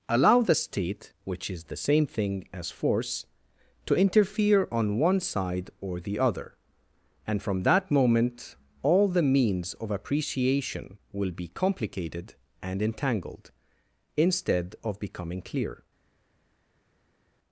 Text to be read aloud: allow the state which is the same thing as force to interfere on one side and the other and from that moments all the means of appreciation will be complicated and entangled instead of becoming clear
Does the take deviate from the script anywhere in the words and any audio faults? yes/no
yes